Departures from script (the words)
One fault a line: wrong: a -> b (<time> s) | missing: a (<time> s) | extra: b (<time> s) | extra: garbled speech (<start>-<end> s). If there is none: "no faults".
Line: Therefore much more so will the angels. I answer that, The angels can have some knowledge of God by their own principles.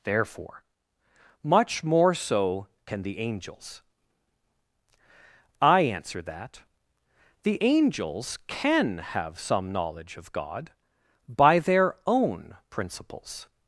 wrong: will -> can (2.9 s)